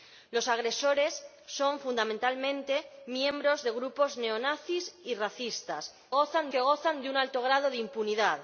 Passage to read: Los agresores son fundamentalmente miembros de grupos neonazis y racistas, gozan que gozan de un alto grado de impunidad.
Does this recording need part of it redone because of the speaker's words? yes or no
no